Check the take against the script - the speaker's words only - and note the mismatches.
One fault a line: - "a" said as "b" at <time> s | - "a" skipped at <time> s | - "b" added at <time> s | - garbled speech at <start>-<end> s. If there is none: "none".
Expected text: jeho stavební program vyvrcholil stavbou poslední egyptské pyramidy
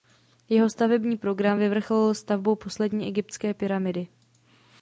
none